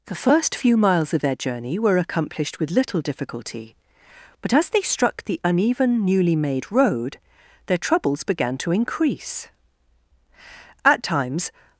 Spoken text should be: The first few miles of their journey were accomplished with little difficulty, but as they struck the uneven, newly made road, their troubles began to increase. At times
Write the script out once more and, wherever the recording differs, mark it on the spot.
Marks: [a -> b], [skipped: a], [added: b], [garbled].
The first few miles of their journey were accomplished with little difficulty, but as they struck the uneven, newly made road, their troubles began to increase. At times